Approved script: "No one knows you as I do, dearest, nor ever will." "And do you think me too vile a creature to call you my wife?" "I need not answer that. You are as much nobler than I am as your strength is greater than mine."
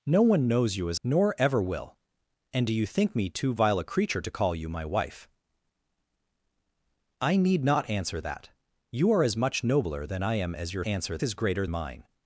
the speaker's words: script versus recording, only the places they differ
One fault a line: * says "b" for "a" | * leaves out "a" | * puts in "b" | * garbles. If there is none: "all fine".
* leaves out "I do dearest"
* says "answer" for "strength"
* leaves out "than"